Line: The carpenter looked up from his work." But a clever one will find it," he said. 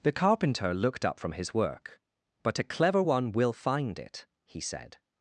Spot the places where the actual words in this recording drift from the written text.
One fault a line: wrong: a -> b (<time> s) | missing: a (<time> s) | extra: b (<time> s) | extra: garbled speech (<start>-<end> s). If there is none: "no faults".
no faults